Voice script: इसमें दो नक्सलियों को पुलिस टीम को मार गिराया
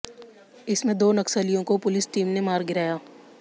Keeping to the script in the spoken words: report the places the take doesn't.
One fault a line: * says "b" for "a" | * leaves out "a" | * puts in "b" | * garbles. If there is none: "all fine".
* says "ने" for "को"